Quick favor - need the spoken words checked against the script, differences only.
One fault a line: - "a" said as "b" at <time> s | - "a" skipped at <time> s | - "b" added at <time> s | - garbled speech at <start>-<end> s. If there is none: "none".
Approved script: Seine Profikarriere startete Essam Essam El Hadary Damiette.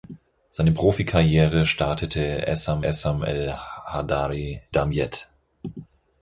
none